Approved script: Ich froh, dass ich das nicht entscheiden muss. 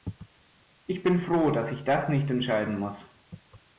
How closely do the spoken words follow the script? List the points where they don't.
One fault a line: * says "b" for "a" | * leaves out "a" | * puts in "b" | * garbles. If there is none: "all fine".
* puts in "bin"